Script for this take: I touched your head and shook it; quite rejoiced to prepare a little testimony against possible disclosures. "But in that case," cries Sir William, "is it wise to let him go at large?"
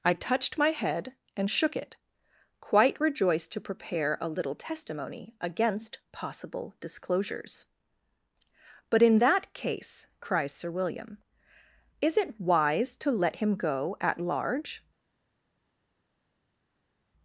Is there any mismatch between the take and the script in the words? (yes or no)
yes